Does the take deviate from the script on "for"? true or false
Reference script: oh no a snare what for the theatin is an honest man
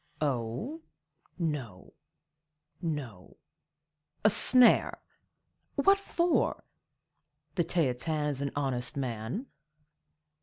false